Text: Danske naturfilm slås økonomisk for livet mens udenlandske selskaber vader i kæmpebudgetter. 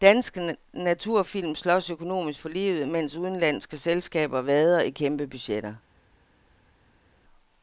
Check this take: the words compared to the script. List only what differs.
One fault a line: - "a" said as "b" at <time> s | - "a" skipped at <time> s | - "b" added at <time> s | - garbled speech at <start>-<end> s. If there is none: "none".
none